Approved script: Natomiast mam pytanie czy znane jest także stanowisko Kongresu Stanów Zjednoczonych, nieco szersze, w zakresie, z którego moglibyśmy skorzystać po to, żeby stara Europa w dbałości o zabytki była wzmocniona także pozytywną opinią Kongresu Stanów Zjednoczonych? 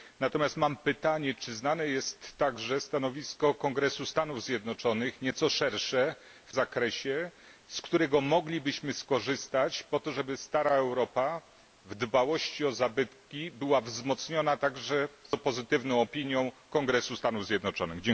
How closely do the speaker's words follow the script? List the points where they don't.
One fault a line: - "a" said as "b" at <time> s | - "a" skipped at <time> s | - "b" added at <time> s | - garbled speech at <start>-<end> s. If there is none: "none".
none